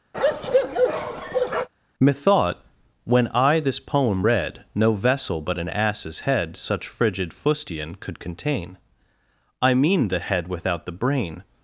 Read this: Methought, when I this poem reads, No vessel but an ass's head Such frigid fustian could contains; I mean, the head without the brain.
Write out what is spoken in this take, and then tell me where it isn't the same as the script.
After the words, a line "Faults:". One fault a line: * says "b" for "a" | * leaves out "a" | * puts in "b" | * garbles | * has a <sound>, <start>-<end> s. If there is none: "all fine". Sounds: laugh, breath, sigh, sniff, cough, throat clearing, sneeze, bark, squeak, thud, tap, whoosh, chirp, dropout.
Methought, when I this poem read, No vessel but an ass's head Such frigid fustian could contain; I mean, the head without the brain.
Faults:
* has a bark, 0.1-1.7 s
* says "read" for "reads"
* says "contain" for "contains"